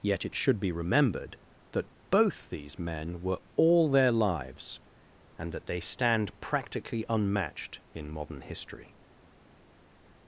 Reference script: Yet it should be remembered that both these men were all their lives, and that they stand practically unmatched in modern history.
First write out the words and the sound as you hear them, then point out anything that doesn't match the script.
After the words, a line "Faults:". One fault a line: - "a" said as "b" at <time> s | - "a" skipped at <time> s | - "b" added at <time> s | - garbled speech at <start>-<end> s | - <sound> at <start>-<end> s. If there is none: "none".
Yet it should be remembered that both these men were all their lives, and that they stand practically unmatched in modern history.
Faults:
none